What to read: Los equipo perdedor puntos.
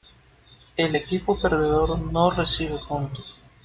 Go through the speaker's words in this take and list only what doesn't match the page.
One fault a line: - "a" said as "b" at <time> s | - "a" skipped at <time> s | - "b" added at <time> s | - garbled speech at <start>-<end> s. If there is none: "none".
- "Los" said as "El" at 0.8 s
- "no recibe" added at 2.0 s